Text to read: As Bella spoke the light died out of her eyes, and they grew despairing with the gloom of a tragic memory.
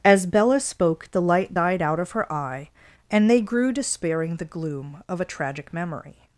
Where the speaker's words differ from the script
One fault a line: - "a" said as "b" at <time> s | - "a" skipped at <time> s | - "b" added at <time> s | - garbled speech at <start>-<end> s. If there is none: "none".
- "eyes" said as "eye" at 2.3 s
- "with" skipped at 4.4 s